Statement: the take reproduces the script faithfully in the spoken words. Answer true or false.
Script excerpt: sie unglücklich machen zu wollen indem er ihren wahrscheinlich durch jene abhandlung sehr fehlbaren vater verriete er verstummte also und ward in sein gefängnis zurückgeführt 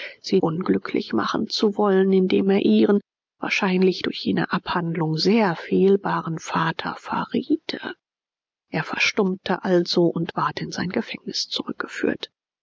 true